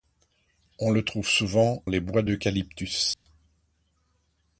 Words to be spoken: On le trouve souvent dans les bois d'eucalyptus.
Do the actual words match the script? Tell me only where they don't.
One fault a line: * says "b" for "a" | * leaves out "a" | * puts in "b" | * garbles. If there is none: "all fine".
* leaves out "dans"